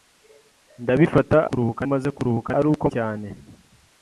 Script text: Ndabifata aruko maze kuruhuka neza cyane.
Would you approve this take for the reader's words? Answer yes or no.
no